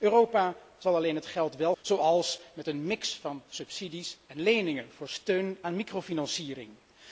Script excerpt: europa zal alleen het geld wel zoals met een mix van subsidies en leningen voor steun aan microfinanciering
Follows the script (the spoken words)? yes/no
yes